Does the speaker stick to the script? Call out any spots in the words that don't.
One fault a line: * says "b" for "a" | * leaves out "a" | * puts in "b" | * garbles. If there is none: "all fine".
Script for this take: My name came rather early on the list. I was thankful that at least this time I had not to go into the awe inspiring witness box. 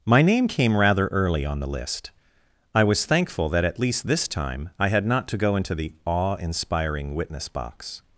all fine